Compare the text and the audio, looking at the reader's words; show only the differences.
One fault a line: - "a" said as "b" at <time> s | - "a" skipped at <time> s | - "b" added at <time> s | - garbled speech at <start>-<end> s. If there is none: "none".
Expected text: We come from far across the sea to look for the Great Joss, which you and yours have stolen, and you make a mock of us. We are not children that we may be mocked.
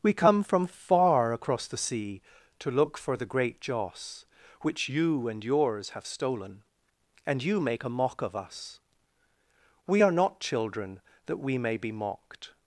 none